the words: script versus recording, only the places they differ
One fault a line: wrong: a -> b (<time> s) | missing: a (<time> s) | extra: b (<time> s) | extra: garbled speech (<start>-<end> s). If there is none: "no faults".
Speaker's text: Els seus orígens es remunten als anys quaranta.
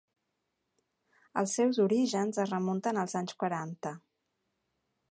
no faults